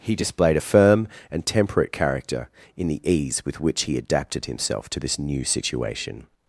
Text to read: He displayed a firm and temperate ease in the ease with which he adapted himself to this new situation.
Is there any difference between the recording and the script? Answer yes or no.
yes